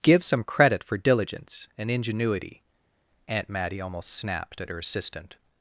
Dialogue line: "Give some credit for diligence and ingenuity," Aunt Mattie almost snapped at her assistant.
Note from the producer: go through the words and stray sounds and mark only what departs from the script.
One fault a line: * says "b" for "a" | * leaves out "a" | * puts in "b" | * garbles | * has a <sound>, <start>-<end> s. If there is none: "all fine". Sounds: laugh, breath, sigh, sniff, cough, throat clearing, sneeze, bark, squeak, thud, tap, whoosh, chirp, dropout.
all fine